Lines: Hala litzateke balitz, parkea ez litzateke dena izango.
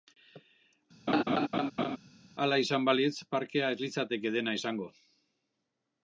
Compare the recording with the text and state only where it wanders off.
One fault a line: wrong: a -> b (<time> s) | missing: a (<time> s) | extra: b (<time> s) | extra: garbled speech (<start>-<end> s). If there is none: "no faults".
wrong: litzateke -> izan (2.6 s)